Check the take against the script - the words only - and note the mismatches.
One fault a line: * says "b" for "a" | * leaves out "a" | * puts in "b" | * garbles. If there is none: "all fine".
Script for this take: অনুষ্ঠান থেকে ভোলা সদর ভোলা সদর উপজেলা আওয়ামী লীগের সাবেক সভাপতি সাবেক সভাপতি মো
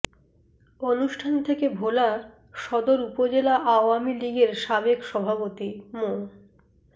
* leaves out "ভোলা সদর"
* leaves out "সাবেক সভাপতি"